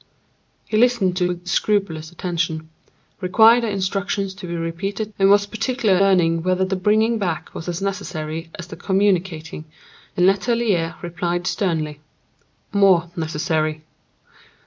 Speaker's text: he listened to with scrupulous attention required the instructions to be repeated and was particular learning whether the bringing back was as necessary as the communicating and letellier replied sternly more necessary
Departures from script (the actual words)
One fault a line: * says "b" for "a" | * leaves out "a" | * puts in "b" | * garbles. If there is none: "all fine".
all fine